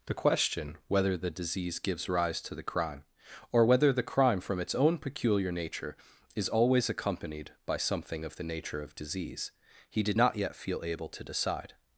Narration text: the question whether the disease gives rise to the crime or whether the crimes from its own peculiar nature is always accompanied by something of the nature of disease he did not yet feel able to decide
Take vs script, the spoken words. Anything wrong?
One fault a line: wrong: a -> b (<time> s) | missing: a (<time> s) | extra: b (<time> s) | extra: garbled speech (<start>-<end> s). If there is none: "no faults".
wrong: crimes -> crime (4.0 s)